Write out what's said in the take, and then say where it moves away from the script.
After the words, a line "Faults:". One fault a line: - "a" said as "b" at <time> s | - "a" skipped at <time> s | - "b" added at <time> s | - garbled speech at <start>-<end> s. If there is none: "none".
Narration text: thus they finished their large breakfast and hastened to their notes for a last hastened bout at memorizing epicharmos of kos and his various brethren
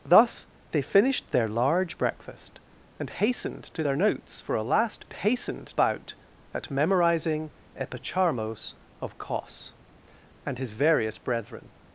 thus they finished their large breakfast and hastened to their notes for a last hastened bout at memorizing epicharmos of kos and his various brethren
Faults:
none